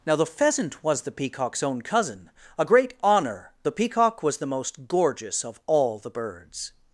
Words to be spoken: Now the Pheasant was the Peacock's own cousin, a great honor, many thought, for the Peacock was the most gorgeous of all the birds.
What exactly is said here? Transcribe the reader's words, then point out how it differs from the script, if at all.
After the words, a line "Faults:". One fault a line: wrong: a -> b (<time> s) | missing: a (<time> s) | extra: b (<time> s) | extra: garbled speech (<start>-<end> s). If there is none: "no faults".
Now the Pheasant was the Peacock's own cousin, a great honor, the Peacock was the most gorgeous of all the birds.
Faults:
missing: many thought for (3.5 s)